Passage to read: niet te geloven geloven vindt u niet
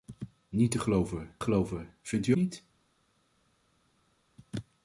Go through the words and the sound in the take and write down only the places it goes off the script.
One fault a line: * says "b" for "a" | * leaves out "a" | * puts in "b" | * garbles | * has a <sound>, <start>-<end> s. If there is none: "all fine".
all fine